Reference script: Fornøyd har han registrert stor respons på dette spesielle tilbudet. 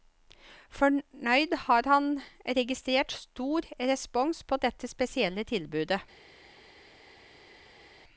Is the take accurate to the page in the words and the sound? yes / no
yes